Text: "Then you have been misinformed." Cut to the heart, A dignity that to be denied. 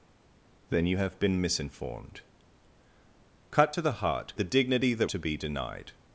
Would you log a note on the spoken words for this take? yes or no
no